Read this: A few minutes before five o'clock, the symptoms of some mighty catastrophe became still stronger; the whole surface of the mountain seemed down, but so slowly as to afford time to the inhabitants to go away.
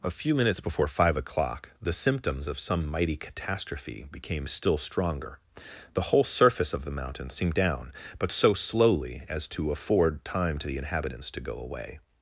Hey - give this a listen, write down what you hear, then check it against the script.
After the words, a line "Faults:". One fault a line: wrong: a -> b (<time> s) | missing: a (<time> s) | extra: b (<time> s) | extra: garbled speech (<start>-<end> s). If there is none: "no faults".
A few minutes before five o'clock, the symptoms of some mighty catastrophe became still stronger; the whole surface of the mountain seemed down, but so slowly as to afford time to the inhabitants to go away.
Faults:
no faults